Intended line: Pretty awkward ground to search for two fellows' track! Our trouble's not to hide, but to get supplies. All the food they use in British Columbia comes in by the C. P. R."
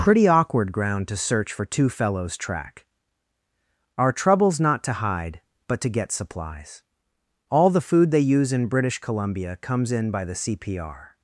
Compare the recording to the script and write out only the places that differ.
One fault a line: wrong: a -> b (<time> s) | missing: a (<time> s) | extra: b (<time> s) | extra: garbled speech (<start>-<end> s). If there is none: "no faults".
no faults